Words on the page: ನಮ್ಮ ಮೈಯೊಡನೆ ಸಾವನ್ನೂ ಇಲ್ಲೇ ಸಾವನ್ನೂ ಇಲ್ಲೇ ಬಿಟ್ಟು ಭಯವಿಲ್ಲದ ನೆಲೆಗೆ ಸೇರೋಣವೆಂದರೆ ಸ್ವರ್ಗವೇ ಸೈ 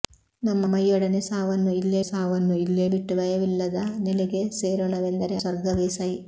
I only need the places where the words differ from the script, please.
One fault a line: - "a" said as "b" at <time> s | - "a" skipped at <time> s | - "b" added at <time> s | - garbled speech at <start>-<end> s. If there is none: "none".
none